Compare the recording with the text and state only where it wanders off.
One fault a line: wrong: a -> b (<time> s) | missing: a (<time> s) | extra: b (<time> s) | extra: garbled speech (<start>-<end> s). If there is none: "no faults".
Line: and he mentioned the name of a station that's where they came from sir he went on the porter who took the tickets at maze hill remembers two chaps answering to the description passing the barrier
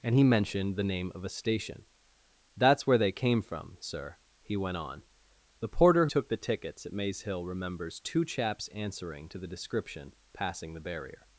missing: who (6.1 s)